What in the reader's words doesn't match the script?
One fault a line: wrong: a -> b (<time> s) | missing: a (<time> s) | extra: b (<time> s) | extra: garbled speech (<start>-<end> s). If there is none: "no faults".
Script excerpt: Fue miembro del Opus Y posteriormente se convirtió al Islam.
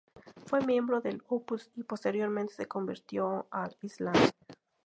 no faults